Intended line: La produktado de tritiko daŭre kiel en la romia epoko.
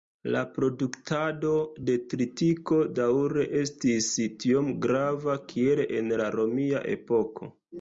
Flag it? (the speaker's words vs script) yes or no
yes